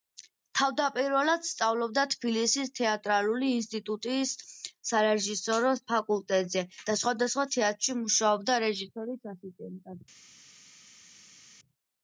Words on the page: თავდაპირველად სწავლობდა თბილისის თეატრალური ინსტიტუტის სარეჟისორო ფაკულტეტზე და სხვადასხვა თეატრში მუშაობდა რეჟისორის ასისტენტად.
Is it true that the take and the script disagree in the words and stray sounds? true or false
false